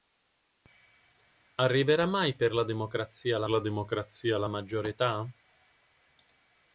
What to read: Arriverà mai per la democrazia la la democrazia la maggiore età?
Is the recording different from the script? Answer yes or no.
no